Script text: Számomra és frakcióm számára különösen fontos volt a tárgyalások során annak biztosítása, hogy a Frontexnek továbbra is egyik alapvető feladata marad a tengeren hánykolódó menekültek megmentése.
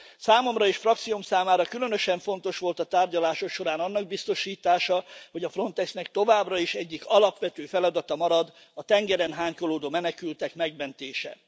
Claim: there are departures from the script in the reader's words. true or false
false